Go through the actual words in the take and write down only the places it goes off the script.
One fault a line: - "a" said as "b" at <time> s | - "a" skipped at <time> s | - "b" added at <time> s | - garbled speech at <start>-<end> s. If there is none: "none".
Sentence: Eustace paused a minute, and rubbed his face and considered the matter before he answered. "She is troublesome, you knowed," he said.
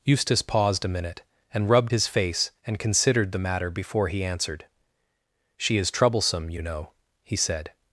- "knowed" said as "know" at 6.6 s